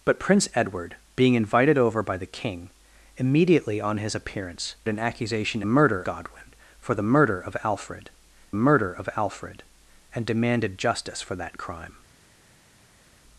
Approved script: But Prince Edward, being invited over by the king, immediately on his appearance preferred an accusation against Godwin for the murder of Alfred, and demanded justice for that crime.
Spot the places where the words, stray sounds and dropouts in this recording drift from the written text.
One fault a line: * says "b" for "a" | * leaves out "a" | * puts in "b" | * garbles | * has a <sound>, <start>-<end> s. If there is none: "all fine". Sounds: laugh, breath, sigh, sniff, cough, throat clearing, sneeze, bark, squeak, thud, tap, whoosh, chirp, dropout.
* leaves out "preferred"
* says "murder" for "against"
* puts in "murder of Alfred"